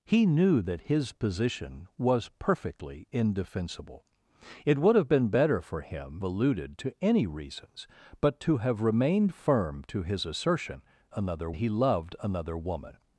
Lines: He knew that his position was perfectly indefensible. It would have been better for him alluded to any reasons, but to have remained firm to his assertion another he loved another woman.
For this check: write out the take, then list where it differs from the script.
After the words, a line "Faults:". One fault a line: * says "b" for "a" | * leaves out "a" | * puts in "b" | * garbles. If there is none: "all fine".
He knew that his position was perfectly indefensible. It would have been better for him alluded to any reasons, but to have remained firm to his assertion another he loved another woman.
Faults:
all fine